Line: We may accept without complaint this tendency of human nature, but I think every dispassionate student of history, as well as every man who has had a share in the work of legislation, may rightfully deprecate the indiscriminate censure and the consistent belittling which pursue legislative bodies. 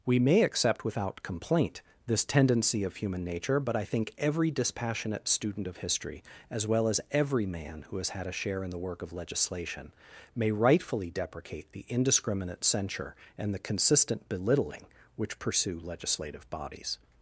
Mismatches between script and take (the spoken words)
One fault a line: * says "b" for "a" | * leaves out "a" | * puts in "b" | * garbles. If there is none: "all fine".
all fine